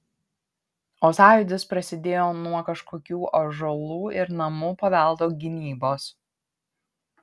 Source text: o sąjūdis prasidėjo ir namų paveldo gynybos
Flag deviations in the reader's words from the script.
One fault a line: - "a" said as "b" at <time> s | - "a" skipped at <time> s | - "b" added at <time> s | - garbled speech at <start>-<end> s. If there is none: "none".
- "nuo kažkokių ąžuolų" added at 2.4 s